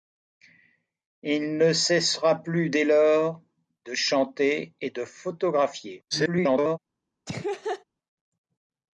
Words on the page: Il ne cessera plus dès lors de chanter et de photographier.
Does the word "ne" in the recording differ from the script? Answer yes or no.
no